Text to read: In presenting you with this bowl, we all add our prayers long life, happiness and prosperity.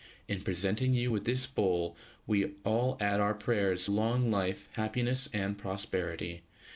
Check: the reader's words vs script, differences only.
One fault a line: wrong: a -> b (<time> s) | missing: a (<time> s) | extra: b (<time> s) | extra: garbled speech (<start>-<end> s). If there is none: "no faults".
no faults